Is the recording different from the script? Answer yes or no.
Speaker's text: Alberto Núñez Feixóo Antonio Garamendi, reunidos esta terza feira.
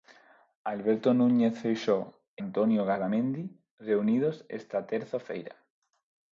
no